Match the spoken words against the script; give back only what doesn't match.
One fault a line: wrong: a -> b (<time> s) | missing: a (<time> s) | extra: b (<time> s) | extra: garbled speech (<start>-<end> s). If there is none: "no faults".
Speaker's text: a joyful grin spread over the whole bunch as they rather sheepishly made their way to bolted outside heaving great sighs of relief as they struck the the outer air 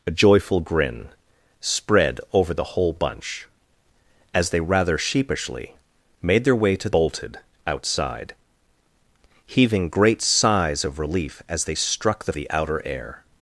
no faults